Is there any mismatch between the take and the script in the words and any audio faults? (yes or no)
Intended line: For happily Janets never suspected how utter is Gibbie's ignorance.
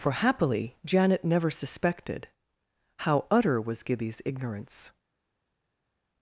yes